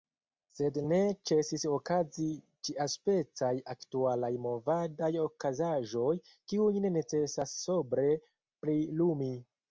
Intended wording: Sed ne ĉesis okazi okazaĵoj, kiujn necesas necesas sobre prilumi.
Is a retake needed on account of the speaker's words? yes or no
yes